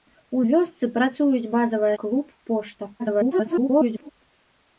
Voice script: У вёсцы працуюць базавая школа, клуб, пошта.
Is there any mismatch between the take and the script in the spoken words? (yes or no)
yes